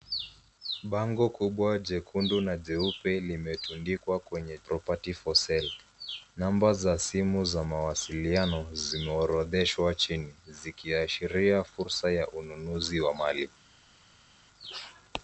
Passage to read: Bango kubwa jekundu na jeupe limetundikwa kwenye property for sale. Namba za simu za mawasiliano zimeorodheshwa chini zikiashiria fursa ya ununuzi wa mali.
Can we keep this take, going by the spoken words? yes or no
yes